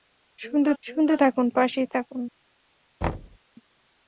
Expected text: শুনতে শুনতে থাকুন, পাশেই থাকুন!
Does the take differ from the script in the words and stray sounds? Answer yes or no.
yes